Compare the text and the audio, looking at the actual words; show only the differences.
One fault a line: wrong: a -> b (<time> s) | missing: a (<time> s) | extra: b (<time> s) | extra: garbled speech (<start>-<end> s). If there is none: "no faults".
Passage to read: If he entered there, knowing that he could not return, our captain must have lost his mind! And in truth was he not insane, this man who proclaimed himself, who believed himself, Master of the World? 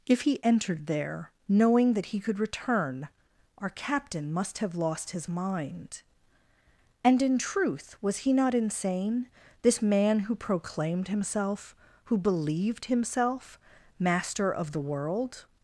missing: not (2.4 s)